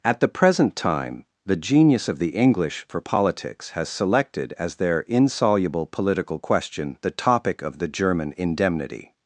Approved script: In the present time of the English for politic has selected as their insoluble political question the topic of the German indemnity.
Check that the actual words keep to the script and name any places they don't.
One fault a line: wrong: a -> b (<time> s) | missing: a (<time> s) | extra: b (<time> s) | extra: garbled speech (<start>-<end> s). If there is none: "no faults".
wrong: In -> At (0.0 s)
extra: the genius (1.4 s)
wrong: politic -> politics (3.0 s)